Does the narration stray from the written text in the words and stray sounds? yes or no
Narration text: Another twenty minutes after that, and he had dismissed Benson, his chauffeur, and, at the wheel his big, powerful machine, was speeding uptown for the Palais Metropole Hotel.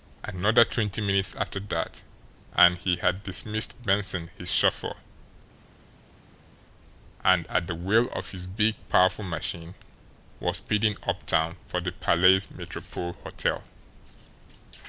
yes